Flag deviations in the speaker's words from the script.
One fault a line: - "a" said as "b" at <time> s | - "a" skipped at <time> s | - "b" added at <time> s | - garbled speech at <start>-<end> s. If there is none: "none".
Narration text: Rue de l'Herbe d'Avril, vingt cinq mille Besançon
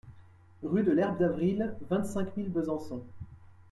none